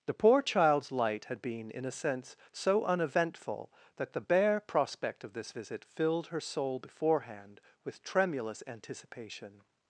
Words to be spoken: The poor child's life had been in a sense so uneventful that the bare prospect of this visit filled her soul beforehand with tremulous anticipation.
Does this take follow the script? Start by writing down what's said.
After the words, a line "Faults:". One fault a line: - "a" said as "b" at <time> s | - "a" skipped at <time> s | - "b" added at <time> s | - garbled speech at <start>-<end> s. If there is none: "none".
The poor child's light had been in a sense so uneventful that the bare prospect of this visit filled her soul beforehand with tremulous anticipation.
Faults:
- "life" said as "light" at 0.9 s